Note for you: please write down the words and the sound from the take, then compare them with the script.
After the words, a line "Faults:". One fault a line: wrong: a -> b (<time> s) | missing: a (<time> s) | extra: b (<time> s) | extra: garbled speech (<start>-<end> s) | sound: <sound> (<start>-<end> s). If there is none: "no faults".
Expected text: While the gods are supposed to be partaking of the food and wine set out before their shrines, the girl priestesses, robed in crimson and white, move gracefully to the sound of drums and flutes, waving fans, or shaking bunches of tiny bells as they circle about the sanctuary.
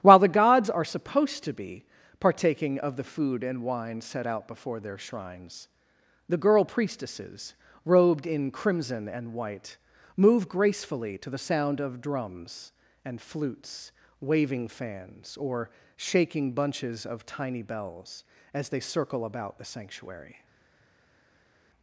While the gods are supposed to be partaking of the food and wine set out before their shrines, the girl priestesses, robed in crimson and white, move gracefully to the sound of drums and flutes, waving fans, or shaking bunches of tiny bells as they circle about the sanctuary.
Faults:
no faults